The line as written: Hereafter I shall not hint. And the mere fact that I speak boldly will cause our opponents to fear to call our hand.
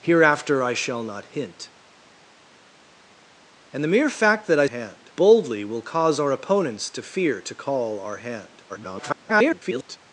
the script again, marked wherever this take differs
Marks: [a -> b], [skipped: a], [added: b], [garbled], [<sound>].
Hereafter I shall not hint. And the mere fact that I [speak -> hand] boldly will cause our opponents to fear to call our hand. [garbled]